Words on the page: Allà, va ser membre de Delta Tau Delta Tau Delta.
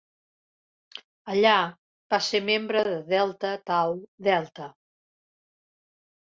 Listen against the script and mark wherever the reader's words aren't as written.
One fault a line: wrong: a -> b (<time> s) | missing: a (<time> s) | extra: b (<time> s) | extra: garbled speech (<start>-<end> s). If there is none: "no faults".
missing: Tau Delta (4.7 s)